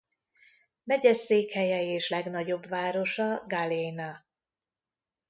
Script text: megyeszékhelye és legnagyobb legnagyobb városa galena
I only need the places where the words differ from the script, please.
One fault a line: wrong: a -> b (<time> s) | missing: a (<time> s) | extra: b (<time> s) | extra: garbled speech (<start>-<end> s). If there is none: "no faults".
missing: legnagyobb (2.7 s)